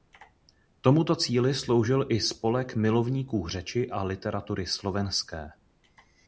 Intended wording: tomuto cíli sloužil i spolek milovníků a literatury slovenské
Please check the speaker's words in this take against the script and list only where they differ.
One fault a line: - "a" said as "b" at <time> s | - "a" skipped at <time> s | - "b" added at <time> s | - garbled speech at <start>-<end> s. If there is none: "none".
- "řeči" added at 3.5 s